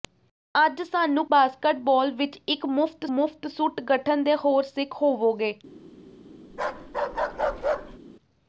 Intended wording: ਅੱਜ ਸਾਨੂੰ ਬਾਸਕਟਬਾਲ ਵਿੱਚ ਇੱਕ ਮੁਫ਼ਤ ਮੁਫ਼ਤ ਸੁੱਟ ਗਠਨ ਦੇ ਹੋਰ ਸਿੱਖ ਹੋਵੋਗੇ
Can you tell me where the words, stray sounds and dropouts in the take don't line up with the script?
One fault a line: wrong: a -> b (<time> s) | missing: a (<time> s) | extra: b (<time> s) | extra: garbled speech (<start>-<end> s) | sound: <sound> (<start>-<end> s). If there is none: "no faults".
sound: bark (6.5-8.0 s)